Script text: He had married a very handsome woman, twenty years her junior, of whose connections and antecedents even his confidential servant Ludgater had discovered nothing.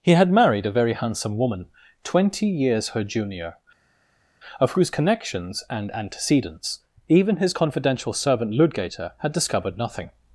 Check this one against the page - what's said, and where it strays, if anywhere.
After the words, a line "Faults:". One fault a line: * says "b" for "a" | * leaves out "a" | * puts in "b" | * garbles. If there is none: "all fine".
He had married a very handsome woman, twenty years her junior, of whose connections and antecedents even his confidential servant Ludgater had discovered nothing.
Faults:
all fine